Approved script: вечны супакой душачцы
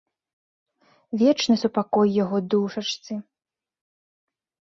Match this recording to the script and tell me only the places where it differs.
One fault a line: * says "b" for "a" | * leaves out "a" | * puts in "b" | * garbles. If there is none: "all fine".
* puts in "яго"